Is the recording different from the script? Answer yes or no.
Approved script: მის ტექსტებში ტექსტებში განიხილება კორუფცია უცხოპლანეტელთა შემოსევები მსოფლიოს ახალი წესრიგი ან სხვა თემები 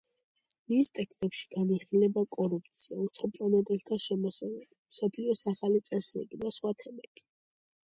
yes